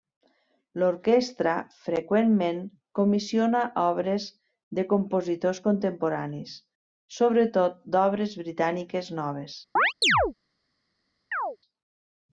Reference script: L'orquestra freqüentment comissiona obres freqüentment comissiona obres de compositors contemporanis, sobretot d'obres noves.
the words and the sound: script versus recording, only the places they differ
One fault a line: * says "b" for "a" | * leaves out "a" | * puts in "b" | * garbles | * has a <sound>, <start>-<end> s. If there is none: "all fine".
* leaves out "freqüentment comissiona obres"
* puts in "britàniques"
* has a chirp, 9.8-10.3 s
* has a chirp, 11.3-11.6 s